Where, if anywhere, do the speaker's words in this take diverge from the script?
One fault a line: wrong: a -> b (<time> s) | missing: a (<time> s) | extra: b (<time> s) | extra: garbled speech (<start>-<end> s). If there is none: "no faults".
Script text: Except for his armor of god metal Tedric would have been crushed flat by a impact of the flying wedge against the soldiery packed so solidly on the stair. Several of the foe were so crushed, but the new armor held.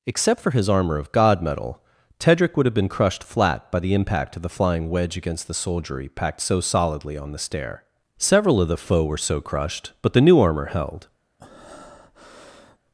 wrong: a -> the (3.8 s)